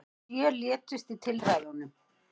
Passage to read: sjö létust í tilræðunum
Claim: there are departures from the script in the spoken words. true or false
false